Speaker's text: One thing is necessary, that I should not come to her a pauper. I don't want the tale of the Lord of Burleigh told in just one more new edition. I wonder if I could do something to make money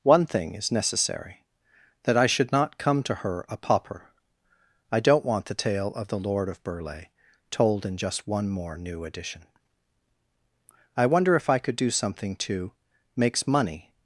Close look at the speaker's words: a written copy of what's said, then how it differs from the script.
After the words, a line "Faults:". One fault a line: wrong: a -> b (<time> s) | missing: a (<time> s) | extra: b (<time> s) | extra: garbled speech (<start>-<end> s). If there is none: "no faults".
One thing is necessary, that I should not come to her a pauper. I don't want the tale of the Lord of Burleigh told in just one more new edition. I wonder if I could do something to makes money
Faults:
wrong: make -> makes (13.2 s)